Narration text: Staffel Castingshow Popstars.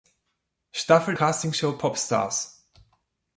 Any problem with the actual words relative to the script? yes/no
no